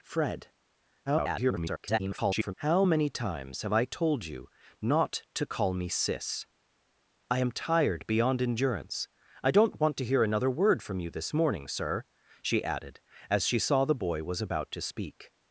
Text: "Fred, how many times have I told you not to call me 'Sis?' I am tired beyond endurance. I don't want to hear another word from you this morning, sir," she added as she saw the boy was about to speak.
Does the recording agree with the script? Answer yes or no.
no